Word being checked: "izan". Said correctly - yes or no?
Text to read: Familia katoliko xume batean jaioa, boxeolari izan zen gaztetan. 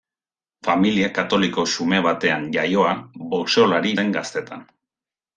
no